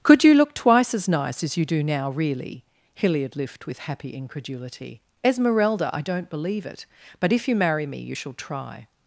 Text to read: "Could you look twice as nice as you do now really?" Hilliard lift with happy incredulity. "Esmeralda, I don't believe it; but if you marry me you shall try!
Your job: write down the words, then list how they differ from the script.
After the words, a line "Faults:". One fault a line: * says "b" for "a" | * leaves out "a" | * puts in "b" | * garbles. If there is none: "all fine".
"Could you look twice as nice as you do now really?" Hilliard lift with happy incredulity. "Esmeralda, I don't believe it; but if you marry me you shall try!
Faults:
all fine